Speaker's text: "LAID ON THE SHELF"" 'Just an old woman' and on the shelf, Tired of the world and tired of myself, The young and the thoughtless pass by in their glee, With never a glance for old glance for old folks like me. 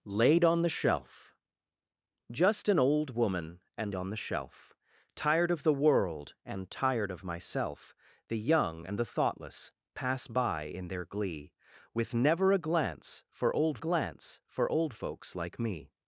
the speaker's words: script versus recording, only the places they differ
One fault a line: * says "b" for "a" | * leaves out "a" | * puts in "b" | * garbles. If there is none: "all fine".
all fine